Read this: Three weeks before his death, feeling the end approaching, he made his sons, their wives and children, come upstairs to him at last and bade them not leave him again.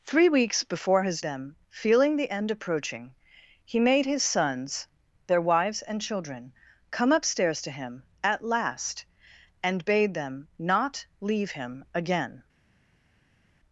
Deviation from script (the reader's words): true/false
true